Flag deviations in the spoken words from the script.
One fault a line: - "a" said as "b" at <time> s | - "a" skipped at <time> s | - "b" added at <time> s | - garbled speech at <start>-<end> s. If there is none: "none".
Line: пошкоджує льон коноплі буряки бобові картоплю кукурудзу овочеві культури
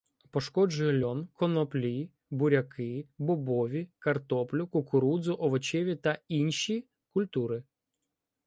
- "та інші" added at 6.0 s